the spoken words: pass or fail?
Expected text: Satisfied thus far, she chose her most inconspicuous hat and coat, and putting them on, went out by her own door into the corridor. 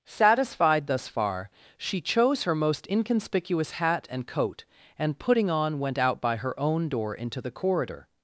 fail